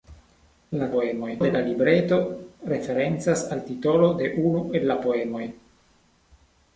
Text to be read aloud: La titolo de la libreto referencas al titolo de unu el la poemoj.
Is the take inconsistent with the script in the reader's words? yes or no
yes